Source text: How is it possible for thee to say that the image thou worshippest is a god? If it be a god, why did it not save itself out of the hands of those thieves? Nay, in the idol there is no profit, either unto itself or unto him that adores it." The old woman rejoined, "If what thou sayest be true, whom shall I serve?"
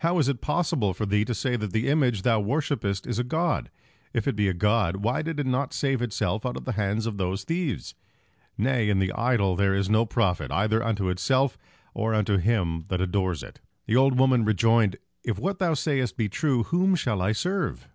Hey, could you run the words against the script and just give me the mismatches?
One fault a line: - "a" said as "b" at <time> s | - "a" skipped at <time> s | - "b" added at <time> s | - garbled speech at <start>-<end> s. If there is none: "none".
none